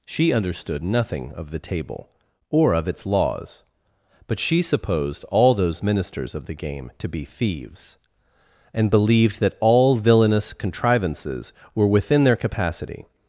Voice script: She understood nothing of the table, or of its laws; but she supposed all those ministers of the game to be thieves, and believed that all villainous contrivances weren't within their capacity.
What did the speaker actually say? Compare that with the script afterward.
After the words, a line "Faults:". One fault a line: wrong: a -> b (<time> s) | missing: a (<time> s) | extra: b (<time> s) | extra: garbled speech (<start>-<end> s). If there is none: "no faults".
She understood nothing of the table, or of its laws; but she supposed all those ministers of the game to be thieves, and believed that all villainous contrivances were within their capacity.
Faults:
wrong: weren't -> were (11.7 s)